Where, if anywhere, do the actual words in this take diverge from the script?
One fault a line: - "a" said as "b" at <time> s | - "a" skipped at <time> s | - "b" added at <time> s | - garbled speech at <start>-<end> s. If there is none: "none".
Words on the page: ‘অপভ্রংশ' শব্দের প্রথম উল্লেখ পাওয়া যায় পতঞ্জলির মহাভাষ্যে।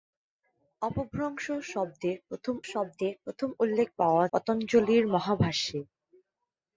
- "শব্দের প্রথম" added at 2.7 s
- "যায়" skipped at 4.3 s